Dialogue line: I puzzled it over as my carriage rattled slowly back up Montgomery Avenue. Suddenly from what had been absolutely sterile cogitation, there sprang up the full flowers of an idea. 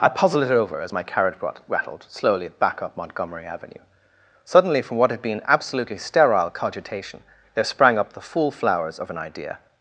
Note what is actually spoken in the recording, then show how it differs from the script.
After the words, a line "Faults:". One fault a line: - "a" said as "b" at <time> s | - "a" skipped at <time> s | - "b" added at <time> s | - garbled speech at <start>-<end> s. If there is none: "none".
I puzzled it over as my carriage rattled slowly back up Montgomery Avenue. Suddenly from what had been absolutely sterile cogitation, there sprang up the full flowers of an idea.
Faults:
none